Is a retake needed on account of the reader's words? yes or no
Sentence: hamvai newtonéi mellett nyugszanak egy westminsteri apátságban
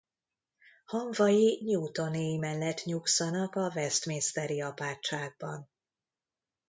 yes